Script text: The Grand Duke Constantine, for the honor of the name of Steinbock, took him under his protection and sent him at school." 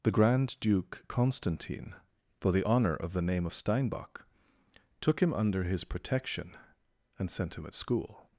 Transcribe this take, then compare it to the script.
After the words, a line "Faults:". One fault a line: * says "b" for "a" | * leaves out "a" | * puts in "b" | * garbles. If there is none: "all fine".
The Grand Duke Constantine, for the honor of the name of Steinbock, took him under his protection and sent him at school."
Faults:
all fine